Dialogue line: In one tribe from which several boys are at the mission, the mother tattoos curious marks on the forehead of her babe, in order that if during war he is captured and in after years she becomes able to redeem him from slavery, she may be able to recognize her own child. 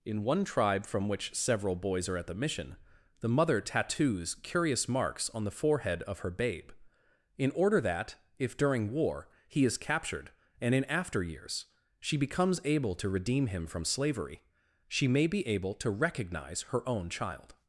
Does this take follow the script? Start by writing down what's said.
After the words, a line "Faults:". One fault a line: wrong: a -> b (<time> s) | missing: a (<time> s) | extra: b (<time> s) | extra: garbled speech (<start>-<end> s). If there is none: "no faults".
In one tribe from which several boys are at the mission, the mother tattoos curious marks on the forehead of her babe, in order that if during war he is captured and in after years she becomes able to redeem him from slavery, she may be able to recognize her own child.
Faults:
no faults